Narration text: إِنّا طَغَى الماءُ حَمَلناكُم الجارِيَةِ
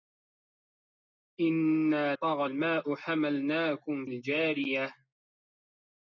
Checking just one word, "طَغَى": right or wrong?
right